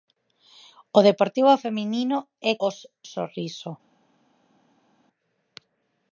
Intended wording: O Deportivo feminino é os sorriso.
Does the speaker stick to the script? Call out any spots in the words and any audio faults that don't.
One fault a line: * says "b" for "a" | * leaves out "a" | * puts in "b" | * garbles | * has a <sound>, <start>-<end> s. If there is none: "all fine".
all fine